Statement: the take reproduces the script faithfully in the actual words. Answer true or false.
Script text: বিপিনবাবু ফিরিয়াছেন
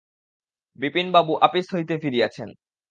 false